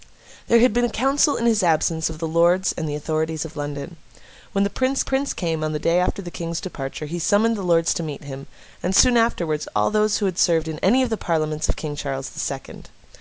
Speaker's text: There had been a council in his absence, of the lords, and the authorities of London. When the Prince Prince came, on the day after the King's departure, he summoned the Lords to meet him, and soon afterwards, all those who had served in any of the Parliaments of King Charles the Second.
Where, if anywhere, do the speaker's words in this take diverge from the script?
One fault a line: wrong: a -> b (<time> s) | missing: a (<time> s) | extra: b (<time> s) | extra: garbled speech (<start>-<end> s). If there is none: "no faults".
no faults